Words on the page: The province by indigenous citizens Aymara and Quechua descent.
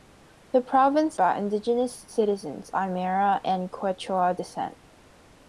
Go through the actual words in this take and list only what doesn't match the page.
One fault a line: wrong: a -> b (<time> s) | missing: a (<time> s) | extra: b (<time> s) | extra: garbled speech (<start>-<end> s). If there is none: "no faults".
no faults